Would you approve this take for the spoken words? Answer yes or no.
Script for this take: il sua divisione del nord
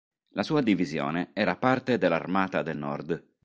no